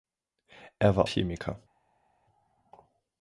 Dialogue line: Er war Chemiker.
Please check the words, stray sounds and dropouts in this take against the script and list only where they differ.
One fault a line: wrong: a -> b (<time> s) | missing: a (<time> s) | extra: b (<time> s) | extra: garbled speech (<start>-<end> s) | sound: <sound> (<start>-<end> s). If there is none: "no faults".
no faults